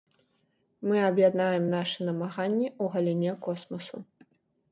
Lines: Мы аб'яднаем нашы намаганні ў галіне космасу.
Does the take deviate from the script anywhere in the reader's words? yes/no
no